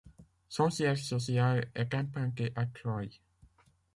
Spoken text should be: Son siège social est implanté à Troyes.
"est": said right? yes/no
yes